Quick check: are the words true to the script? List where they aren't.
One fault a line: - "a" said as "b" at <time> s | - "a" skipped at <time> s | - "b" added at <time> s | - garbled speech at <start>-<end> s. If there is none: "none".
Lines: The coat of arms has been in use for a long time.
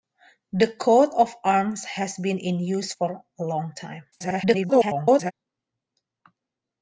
- garbled speech at 4.1-5.3 s